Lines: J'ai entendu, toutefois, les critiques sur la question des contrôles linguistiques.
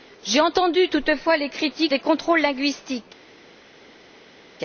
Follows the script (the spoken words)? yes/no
no